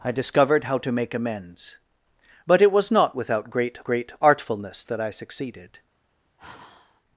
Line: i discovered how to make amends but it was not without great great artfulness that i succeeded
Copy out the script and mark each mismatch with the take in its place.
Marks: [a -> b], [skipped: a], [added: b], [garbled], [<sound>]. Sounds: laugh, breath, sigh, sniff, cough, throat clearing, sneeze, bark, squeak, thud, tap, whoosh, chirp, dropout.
i discovered how to make amends but it was not without great great artfulness that i succeeded [sigh]